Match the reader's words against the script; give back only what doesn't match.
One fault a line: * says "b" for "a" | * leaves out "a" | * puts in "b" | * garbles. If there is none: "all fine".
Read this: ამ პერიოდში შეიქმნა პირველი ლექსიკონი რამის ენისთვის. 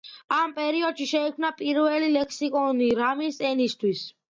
all fine